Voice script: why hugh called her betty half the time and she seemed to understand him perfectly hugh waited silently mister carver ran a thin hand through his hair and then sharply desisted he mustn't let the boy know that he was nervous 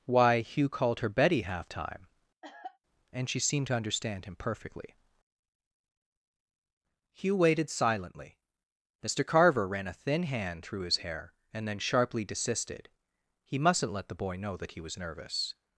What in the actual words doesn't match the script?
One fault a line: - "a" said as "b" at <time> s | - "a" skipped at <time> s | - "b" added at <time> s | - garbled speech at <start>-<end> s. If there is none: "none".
- "the" skipped at 1.7 s